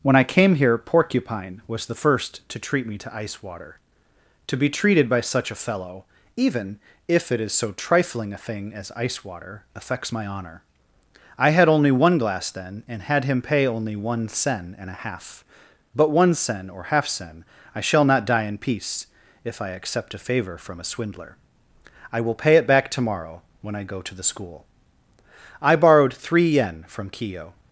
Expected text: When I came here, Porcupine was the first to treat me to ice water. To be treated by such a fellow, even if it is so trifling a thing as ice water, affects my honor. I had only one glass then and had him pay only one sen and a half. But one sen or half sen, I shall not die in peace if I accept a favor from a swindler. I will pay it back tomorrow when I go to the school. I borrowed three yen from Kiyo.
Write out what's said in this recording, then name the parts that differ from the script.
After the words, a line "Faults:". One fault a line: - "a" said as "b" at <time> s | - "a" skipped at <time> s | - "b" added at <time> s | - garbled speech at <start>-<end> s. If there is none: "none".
When I came here, Porcupine was the first to treat me to ice water. To be treated by such a fellow, even if it is so trifling a thing as ice water, affects my honor. I had only one glass then and had him pay only one sen and a half. But one sen or half sen, I shall not die in peace if I accept a favor from a swindler. I will pay it back tomorrow when I go to the school. I borrowed three yen from Kiyo.
Faults:
none